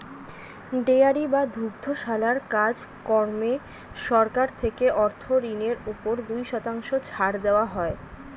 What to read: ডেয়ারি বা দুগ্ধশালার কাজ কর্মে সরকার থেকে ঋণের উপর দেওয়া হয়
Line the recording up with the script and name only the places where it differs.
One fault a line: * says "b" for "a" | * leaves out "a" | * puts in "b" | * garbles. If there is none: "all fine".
* puts in "অর্থ"
* puts in "দুই শতাংশ ছাড়"